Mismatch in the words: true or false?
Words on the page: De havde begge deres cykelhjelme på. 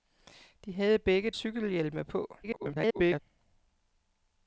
true